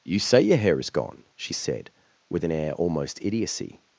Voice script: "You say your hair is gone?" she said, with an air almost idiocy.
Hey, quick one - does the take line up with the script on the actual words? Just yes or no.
yes